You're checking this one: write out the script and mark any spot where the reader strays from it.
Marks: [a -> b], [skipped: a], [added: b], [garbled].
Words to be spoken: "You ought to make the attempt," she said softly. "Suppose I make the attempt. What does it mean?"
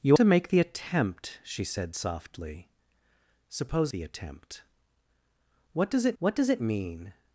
"You [skipped: ought] to make the attempt," she said softly. "Suppose [I make the attempt. -> the attempt What does it] What does it mean?"